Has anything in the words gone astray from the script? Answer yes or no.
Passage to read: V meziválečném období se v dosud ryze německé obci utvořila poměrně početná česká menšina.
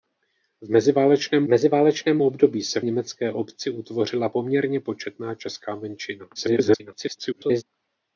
yes